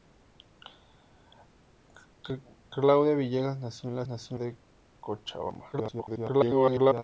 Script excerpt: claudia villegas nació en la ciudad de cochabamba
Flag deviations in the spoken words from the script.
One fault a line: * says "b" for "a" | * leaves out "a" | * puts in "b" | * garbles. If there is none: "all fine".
* says "nació" for "ciudad"
* garbles